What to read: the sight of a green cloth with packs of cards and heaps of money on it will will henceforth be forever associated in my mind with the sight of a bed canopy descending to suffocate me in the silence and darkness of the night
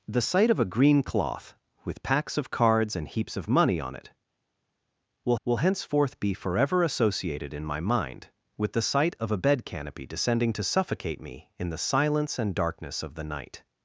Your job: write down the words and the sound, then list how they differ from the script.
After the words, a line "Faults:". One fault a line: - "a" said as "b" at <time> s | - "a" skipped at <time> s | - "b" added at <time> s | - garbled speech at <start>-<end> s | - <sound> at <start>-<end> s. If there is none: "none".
the sight of a green cloth with packs of cards and heaps of money on it will will henceforth be forever associated in my mind with the sight of a bed canopy descending to suffocate me in the silence and darkness of the night
Faults:
none